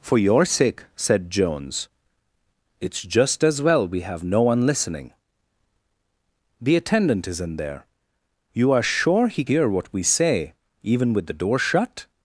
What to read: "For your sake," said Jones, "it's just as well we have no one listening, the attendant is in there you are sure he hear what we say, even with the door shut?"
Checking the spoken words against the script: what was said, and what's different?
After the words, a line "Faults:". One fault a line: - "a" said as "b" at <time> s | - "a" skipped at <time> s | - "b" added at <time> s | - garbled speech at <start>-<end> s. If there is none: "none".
"For your sake," said Jones, "it's just as well we have no one listening, the attendant is in there you are sure he hear what we say, even with the door shut?"
Faults:
none